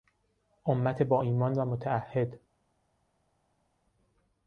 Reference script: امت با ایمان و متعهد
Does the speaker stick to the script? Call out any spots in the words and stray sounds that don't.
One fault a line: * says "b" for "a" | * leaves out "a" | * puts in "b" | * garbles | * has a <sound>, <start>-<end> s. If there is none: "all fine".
all fine